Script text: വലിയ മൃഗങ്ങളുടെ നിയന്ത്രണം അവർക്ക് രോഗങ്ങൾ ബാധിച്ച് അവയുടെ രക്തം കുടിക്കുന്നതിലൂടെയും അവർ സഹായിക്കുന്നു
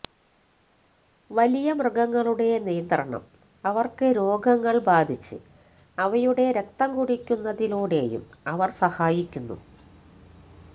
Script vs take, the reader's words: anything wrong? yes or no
no